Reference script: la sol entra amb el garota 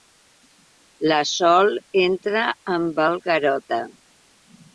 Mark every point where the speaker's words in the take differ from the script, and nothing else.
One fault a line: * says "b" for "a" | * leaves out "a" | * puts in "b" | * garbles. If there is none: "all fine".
all fine